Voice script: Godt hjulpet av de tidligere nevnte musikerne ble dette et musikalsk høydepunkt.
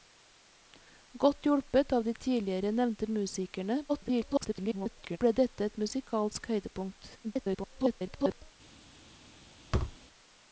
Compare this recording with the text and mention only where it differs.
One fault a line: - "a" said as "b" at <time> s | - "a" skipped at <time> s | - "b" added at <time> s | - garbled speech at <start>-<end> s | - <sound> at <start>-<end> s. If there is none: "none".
- garbled speech at 3.9-5.2 s
- garbled speech at 7.2-8.5 s
- thud at 9.7-10.0 s